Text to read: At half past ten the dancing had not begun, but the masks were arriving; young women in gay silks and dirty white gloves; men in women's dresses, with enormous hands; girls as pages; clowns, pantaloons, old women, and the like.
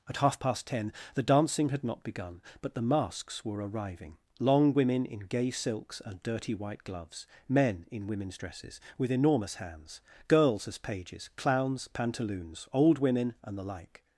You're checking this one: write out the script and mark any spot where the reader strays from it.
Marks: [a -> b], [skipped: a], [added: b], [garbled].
At half past ten the dancing had not begun, but the masks were arriving; [young -> long] women in gay silks and dirty white gloves; men in women's dresses, with enormous hands; girls as pages; clowns, pantaloons, old women, and the like.